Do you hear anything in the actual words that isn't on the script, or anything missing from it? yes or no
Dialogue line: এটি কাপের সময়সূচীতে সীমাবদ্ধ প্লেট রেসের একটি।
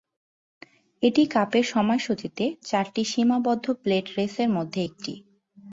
yes